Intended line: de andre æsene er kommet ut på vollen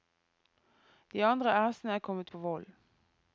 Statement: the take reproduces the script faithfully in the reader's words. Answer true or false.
false